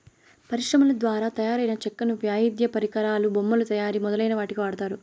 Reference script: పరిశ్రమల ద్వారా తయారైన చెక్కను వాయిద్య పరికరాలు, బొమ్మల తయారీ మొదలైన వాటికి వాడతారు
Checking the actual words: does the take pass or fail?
pass